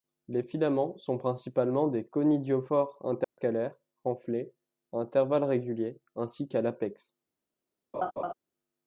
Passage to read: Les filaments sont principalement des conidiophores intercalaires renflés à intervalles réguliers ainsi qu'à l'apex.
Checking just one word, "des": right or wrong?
right